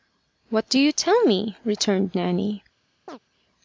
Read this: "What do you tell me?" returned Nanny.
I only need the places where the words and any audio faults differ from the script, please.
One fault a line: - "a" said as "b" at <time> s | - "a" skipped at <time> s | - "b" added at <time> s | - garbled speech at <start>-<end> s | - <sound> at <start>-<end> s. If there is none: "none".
- chirp at 3.1-3.2 s